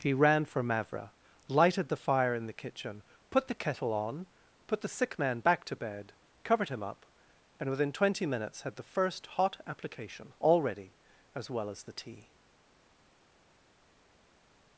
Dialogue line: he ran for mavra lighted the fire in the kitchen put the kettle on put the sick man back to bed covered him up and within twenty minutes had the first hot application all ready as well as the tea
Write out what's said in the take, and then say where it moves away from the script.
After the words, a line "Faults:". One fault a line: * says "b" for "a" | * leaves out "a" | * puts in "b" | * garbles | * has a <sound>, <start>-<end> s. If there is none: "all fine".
he ran for mavra lighted the fire in the kitchen put the kettle on put the sick man back to bed covered him up and within twenty minutes had the first hot application all ready as well as the tea
Faults:
all fine